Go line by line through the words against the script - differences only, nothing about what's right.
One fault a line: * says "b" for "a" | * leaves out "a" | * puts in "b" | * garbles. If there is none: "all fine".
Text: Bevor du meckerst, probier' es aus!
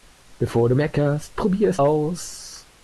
all fine